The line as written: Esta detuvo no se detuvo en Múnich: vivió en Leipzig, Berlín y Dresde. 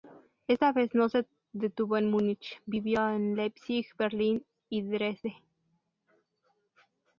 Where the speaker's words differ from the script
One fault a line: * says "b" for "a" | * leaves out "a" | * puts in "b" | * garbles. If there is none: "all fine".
* says "vez" for "detuvo"